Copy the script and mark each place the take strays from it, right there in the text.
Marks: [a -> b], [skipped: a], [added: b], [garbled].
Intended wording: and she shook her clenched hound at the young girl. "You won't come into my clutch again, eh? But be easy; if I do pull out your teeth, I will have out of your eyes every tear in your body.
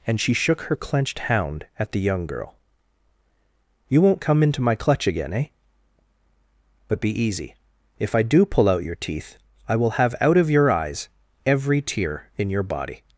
and she shook her clenched hound at the young girl. "You won't come into my clutch again, eh? But be easy; if I do pull out your teeth, I will have out of your eyes every tear in your body.